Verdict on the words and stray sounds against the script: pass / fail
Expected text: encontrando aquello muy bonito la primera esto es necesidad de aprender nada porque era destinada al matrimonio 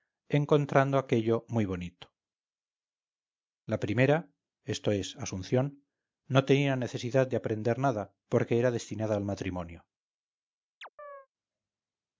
fail